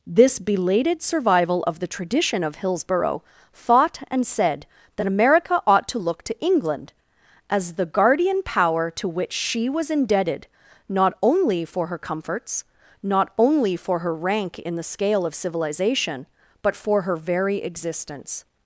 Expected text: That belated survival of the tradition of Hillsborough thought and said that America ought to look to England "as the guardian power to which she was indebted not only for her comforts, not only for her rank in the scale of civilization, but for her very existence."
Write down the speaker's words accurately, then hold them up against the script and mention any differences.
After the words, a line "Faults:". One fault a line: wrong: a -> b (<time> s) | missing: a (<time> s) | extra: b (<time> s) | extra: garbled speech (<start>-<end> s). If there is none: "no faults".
This belated survival of the tradition of Hillsborough thought and said that America ought to look to England "as the guardian power to which she was indebted not only for her comforts, not only for her rank in the scale of civilization, but for her very existence."
Faults:
wrong: That -> This (0.1 s)